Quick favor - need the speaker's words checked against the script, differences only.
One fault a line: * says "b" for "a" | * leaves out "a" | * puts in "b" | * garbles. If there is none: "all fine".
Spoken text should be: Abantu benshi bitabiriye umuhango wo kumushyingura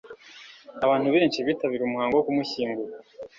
all fine